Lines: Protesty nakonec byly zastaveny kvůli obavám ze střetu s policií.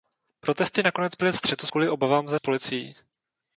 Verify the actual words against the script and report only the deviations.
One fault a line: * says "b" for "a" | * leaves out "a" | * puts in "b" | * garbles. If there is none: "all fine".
* says "střetu" for "zastaveny"
* leaves out "střetu"